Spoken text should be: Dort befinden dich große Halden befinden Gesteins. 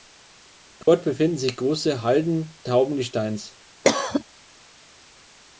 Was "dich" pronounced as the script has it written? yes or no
no